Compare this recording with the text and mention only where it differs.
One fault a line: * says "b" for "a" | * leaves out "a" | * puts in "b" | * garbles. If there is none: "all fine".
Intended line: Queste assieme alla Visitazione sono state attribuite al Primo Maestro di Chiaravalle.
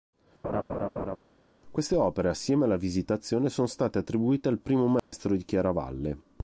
* puts in "opere"